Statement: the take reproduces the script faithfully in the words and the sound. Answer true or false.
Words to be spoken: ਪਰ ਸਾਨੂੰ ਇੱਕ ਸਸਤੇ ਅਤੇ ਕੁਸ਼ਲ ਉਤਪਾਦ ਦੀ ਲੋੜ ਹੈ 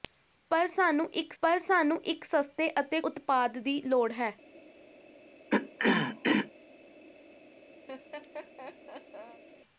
false